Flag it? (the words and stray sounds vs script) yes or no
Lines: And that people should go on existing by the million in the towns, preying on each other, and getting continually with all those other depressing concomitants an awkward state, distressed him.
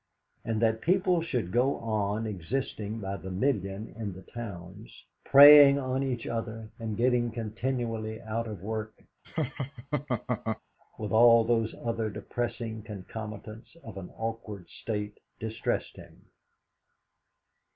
yes